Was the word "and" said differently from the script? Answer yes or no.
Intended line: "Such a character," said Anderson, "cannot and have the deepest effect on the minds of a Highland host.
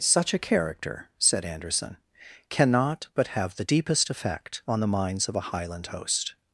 yes